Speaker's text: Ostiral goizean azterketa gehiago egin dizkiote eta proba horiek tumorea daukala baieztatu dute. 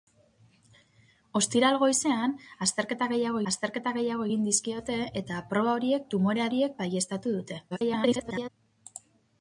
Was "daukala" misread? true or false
true